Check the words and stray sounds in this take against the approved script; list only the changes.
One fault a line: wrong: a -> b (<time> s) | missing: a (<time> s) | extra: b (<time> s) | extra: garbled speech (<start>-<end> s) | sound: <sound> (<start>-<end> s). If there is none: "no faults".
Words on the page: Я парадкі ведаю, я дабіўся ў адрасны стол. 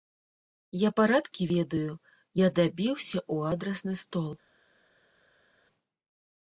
no faults